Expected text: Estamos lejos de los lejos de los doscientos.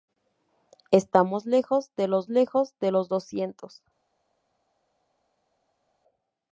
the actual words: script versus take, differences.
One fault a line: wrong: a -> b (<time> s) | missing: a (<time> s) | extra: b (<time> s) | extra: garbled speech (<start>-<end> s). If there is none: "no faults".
no faults